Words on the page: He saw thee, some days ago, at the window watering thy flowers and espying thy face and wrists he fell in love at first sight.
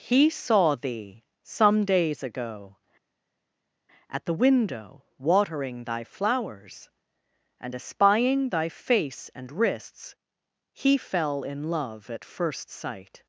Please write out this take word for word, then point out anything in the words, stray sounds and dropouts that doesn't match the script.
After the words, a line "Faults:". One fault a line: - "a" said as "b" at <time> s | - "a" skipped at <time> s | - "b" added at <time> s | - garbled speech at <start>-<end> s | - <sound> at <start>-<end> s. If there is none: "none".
He saw thee, some days ago, at the window watering thy flowers and espying thy face and wrists he fell in love at first sight.
Faults:
none